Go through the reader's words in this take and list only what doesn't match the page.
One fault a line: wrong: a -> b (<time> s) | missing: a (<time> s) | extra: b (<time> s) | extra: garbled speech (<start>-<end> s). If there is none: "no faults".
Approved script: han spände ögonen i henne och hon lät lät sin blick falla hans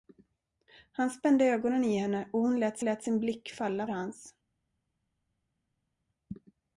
no faults